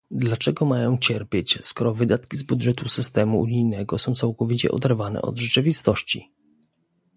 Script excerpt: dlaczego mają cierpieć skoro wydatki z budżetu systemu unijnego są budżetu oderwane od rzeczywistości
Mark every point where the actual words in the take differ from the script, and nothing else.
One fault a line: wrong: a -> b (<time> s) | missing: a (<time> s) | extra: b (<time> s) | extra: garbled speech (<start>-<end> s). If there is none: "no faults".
wrong: budżetu -> całkowicie (4.1 s)